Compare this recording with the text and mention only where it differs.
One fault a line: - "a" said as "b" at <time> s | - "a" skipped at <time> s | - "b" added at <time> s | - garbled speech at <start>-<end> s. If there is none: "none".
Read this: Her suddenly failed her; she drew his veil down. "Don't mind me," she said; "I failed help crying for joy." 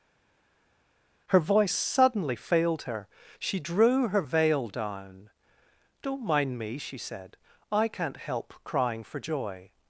- "voice" added at 1.4 s
- "his" said as "her" at 4.1 s
- "failed" said as "can't" at 7.9 s